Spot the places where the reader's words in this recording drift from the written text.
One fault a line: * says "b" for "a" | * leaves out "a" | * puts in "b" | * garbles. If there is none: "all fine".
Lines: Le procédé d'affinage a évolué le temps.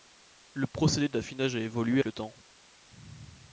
all fine